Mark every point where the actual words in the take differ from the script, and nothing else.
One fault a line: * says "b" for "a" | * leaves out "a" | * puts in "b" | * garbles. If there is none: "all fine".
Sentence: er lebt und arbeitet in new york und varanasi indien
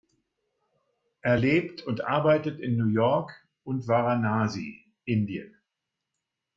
all fine